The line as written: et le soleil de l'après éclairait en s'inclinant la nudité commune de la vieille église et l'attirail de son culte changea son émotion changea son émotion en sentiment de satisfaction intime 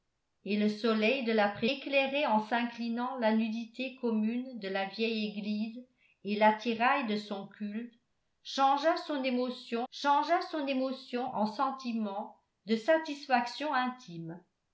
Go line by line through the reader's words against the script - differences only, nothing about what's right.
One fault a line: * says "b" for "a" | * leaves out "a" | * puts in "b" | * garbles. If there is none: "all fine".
all fine